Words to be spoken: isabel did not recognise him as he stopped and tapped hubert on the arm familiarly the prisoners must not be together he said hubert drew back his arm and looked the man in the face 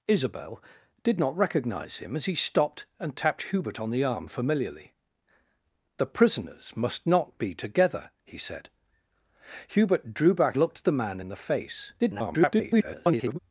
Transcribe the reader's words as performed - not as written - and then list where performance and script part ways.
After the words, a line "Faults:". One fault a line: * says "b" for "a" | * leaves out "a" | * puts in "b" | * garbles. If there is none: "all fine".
isabel did not recognise him as he stopped and tapped hubert on the arm familiarly the prisoners must not be together he said hubert drew back looked the man in the face [garbled]
Faults:
* leaves out "his arm and"
* garbles